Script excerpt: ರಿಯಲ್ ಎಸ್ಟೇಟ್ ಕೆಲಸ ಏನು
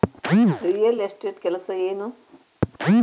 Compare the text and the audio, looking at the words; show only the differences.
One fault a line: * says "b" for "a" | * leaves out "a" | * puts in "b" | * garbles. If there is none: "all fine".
all fine